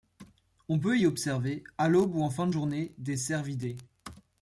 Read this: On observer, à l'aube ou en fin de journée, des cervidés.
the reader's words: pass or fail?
fail